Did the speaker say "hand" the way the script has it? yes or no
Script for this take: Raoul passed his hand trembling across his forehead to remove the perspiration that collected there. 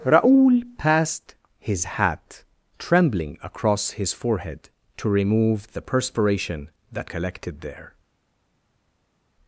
no